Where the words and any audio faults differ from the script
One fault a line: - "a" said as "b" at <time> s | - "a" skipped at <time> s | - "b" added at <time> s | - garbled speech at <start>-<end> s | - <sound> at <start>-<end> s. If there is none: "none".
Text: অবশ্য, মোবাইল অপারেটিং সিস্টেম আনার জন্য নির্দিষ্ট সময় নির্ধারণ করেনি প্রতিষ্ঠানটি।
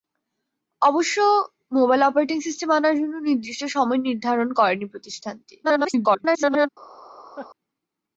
- garbled speech at 5.6-6.7 s
- laugh at 7.4-7.5 s